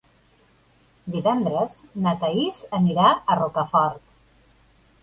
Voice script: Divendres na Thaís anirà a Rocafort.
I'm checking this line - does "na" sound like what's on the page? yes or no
yes